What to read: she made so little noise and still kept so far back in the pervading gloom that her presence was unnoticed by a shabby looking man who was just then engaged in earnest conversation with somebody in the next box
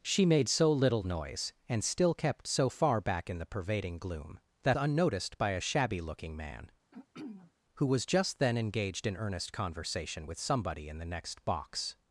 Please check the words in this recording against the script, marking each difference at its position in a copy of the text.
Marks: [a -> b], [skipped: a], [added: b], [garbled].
she made so little noise and still kept so far back in the pervading gloom that [skipped: her presence was] unnoticed by a shabby looking man who was just then engaged in earnest conversation with somebody in the next box